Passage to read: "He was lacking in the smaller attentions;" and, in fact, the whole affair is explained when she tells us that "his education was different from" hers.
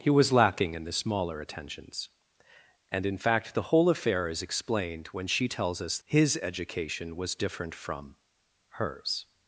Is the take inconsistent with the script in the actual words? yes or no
yes